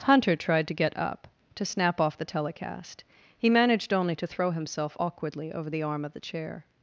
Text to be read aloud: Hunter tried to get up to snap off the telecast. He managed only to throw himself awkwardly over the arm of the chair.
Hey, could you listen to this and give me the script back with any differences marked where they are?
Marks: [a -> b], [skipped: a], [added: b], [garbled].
Hunter tried to get up to snap off the telecast. He managed only to throw himself awkwardly over the arm of the chair.